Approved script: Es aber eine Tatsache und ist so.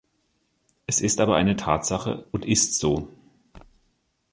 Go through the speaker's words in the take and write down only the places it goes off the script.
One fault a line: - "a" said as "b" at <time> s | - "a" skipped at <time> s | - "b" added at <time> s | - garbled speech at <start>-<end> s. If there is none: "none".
- "ist" added at 1.0 s